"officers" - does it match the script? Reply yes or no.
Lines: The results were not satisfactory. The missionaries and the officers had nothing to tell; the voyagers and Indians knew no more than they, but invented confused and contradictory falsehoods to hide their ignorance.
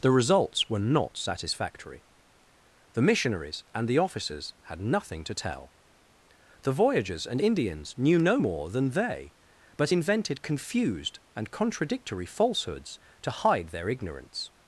yes